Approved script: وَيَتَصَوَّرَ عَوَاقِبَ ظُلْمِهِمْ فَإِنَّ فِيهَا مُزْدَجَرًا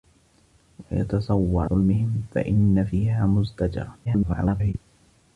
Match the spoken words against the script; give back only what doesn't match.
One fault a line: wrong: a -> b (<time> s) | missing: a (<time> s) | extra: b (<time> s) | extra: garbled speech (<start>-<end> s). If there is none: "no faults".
missing: عَوَاقِبَ (1.7 s)
extra: garbled speech (4.0-4.7 s)